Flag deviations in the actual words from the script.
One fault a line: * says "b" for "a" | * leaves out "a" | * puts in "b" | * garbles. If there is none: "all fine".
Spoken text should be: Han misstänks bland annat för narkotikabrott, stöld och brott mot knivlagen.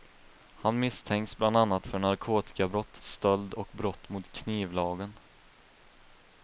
all fine